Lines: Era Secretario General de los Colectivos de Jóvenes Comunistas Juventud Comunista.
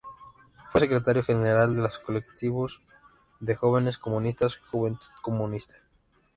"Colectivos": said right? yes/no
yes